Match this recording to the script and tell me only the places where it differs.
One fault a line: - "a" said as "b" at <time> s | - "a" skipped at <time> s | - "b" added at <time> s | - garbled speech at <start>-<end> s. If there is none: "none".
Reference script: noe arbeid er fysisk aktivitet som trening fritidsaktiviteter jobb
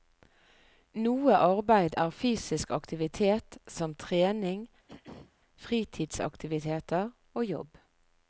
- "og" added at 7.3 s